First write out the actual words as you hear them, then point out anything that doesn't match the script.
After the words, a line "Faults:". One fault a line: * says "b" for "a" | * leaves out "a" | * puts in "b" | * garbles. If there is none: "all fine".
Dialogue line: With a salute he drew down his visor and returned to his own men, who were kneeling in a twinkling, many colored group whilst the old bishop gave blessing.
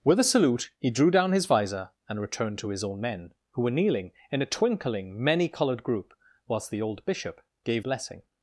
With a salute he drew down his visor and returned to his own men, who were kneeling in a twinkling, many colored group whilst the old bishop gave blessing.
Faults:
all fine